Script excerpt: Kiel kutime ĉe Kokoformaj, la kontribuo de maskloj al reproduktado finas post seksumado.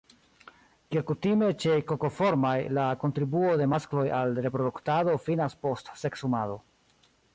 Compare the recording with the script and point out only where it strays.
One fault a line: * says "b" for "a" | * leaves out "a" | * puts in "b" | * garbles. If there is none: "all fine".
all fine